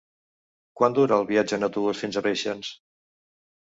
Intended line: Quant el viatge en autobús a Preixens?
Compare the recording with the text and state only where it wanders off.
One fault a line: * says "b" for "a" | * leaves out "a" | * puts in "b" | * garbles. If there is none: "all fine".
* puts in "dura"
* puts in "fins"